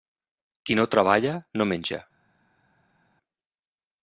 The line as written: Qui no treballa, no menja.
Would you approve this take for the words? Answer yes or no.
yes